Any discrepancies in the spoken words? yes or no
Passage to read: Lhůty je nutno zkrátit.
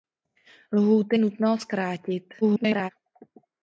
yes